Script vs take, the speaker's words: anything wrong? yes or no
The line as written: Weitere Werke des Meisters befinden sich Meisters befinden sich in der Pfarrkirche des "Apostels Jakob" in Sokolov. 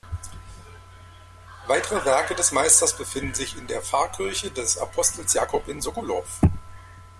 yes